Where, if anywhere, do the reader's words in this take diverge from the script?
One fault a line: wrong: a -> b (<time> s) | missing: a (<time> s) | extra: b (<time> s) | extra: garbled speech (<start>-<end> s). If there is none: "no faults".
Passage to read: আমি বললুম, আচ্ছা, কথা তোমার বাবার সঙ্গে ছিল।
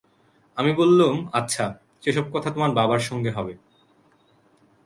extra: সে-সব (2.0 s)
wrong: ছিল -> হবে (3.3 s)